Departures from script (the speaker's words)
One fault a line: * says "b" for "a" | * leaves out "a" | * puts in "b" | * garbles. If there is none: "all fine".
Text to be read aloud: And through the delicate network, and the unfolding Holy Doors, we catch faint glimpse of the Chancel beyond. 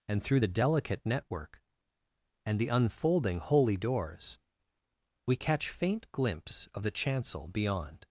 all fine